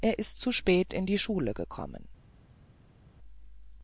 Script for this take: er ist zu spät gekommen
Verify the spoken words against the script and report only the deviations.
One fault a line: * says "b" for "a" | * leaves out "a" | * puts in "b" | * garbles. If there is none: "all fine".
* puts in "in die schule"